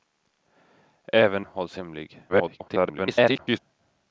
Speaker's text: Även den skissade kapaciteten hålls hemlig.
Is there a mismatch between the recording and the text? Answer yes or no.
yes